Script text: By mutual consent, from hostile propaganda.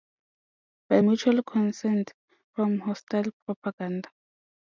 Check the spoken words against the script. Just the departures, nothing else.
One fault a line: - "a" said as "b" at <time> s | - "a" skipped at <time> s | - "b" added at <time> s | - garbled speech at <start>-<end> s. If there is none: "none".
none